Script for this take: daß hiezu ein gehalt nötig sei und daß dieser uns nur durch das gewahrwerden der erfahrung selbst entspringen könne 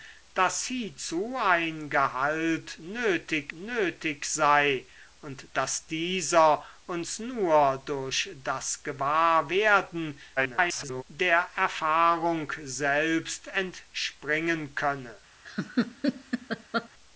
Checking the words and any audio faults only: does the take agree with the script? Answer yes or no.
no